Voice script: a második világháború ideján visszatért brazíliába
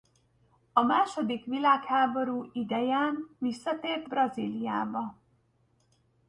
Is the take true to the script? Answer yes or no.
yes